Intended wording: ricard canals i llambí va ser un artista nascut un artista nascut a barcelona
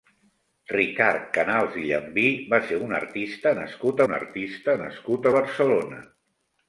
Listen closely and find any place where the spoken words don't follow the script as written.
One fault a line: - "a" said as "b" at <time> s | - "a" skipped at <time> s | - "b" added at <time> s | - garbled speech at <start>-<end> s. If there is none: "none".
none